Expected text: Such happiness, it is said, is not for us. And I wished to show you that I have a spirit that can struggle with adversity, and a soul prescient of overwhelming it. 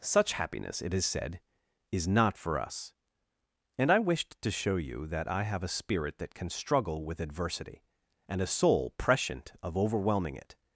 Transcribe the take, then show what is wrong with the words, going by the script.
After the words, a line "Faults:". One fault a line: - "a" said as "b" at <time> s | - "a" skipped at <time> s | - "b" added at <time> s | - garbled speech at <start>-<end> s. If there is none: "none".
Such happiness, it is said, is not for us. And I wished to show you that I have a spirit that can struggle with adversity, and a soul prescient of overwhelming it.
Faults:
none